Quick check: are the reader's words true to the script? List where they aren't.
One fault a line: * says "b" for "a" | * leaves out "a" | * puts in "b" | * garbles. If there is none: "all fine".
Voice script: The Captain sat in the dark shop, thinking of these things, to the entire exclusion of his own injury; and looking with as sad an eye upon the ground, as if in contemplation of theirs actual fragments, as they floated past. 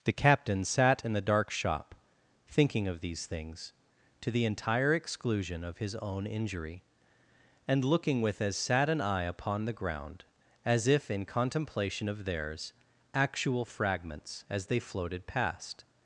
all fine